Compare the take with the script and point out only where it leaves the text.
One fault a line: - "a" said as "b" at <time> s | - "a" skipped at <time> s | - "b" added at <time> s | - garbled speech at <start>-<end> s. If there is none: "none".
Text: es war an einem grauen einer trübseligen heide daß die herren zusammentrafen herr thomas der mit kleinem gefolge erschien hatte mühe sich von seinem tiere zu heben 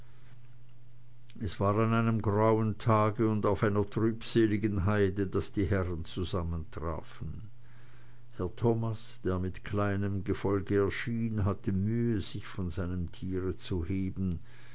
- "tage und auf" added at 2.8 s